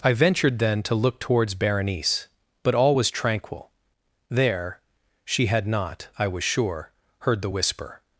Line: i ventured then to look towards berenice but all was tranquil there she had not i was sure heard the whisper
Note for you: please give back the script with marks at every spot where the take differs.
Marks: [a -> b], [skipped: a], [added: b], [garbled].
i ventured then to look towards berenice but all was tranquil there she had not i was sure heard the whisper